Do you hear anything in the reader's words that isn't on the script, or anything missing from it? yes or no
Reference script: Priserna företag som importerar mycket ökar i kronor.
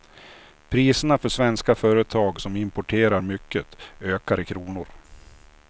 yes